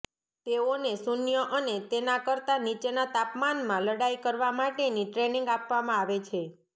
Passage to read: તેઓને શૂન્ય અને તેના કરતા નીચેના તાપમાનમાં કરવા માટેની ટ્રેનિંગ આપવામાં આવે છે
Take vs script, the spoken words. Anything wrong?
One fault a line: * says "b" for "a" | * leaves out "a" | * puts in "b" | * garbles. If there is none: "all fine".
* puts in "લડાઈ"